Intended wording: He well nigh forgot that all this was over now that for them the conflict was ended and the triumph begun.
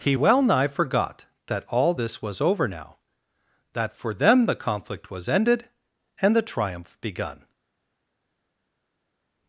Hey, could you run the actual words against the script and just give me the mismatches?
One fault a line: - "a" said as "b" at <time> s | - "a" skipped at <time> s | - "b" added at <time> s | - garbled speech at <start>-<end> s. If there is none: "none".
none